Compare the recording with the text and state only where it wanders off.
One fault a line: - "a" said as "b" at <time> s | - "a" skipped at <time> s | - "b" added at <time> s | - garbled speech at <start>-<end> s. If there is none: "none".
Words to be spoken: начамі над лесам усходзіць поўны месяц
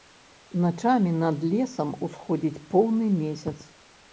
none